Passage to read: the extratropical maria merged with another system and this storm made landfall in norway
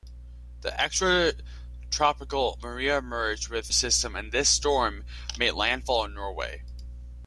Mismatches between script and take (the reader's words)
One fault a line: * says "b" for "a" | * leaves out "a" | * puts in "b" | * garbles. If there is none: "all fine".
* leaves out "another"